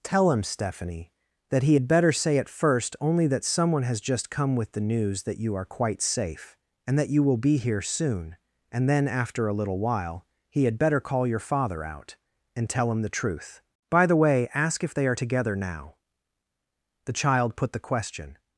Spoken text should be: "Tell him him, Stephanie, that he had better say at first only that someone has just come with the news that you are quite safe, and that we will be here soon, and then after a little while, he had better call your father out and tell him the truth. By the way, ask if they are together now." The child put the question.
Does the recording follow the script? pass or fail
fail